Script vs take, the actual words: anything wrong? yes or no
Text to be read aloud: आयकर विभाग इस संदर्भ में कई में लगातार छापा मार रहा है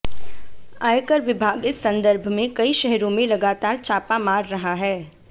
yes